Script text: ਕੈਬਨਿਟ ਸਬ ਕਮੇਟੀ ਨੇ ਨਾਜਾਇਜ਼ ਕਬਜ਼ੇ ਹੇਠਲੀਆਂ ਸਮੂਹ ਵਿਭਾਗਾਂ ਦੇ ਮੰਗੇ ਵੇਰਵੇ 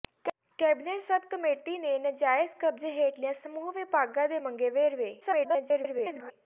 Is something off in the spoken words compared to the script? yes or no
yes